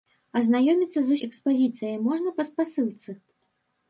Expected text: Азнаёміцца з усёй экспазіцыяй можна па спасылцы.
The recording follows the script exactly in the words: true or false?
false